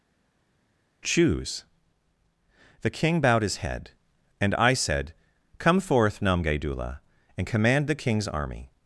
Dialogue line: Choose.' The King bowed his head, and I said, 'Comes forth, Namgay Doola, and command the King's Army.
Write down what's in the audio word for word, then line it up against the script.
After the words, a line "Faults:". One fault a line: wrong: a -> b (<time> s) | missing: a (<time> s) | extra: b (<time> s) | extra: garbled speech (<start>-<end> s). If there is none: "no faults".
Choose.' The King bowed his head, and I said, 'Come forth, Namgay Doola, and command the King's Army.
Faults:
wrong: Comes -> Come (5.6 s)